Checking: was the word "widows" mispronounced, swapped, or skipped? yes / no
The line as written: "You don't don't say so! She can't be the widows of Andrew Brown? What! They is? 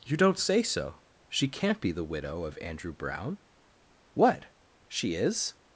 yes